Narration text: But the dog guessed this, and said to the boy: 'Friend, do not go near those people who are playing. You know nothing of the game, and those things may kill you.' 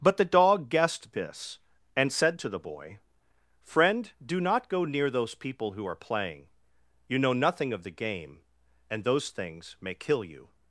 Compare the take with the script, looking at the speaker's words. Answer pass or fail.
pass